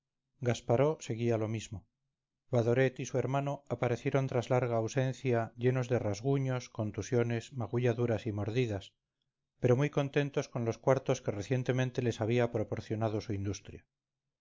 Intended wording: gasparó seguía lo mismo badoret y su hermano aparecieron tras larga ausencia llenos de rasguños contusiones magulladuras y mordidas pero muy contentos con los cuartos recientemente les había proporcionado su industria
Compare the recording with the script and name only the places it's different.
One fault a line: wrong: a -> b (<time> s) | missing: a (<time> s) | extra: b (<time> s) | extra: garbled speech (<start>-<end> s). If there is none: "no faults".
extra: que (11.2 s)